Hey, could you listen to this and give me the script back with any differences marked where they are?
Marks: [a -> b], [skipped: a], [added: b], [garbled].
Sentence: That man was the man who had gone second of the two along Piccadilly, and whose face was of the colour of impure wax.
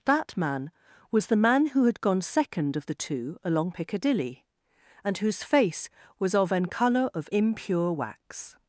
That man was the man who had gone second of the two along Piccadilly, and whose face was of [the -> an] colour of impure wax.